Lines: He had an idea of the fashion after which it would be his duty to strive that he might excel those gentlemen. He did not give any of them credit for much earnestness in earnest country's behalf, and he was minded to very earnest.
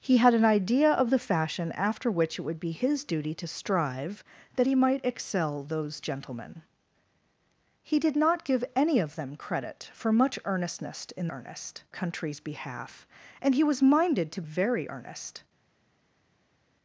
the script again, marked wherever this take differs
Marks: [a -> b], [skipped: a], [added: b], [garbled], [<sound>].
He had an idea of the fashion after which it would be his duty to strive that he might excel those gentlemen. He did not give any of them credit for much earnestness in earnest country's behalf, and he was minded to very earnest.